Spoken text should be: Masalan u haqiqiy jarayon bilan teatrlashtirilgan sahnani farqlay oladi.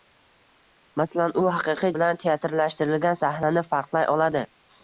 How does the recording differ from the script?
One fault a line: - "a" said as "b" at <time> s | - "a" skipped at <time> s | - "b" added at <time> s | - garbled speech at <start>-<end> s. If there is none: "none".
- "jarayon" skipped at 1.9 s